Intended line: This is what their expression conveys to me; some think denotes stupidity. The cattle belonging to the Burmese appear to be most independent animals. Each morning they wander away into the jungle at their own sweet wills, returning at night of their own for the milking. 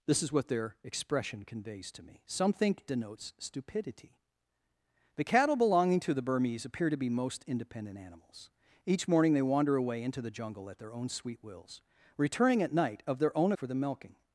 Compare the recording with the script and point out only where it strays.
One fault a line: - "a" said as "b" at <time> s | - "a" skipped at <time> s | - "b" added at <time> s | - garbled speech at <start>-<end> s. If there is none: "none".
none